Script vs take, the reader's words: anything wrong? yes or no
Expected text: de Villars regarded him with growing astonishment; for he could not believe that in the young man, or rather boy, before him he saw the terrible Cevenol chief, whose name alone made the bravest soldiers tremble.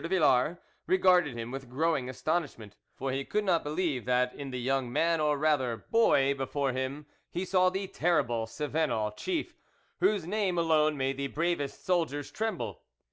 no